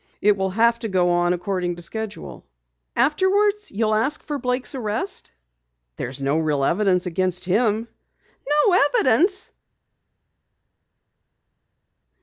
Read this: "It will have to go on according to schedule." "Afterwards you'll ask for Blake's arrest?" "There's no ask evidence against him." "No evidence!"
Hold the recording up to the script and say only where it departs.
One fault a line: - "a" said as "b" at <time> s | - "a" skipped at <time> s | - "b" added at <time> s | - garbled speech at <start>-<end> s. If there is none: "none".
- "ask" said as "real" at 6.4 s